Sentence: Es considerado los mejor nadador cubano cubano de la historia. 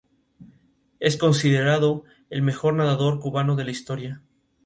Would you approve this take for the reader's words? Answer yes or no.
no